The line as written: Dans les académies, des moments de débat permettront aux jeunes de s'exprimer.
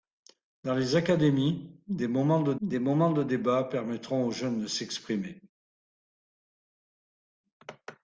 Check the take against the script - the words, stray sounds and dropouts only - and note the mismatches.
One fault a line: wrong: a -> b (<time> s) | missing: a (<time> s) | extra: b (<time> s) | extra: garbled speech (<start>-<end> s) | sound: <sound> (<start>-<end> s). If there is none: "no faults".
extra: des moments de (2.6 s)